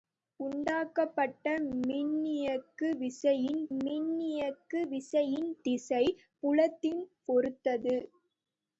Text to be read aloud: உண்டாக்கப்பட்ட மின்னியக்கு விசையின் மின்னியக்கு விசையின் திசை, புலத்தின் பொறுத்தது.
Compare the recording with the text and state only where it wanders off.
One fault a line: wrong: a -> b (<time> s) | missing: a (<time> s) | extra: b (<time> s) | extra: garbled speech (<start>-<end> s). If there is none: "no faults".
no faults